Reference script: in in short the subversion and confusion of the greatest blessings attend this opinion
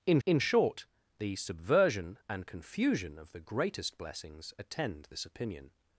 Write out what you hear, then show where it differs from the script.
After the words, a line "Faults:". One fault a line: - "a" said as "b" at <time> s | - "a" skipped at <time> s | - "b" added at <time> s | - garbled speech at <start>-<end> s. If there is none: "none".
in in short the subversion and confusion of the greatest blessings attend this opinion
Faults:
none